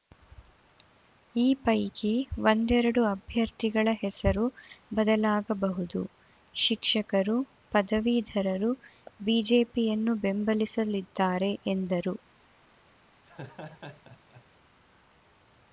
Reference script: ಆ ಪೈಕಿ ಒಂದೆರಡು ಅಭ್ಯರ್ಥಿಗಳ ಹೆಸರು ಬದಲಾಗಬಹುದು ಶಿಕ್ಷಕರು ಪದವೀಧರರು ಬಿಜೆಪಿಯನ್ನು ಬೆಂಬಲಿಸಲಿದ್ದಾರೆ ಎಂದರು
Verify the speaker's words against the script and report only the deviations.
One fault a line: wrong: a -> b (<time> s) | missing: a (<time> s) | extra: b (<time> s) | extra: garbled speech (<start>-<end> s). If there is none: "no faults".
wrong: ಆ -> ಈ (1.4 s)